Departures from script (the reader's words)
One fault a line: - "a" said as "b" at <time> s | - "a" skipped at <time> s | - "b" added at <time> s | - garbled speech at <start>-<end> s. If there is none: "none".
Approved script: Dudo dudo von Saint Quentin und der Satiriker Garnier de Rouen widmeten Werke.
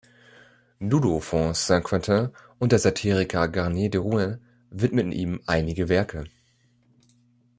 - "dudo" skipped at 1.2 s
- "ihm einige" added at 5.1 s